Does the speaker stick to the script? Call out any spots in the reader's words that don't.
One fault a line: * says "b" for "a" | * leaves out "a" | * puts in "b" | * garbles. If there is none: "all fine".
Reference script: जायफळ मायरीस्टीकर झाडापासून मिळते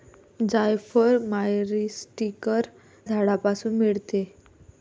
all fine